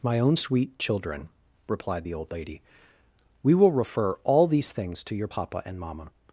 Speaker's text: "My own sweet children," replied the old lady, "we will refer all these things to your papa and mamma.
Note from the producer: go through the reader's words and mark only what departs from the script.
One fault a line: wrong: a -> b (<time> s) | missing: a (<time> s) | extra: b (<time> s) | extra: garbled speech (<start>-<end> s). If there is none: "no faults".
no faults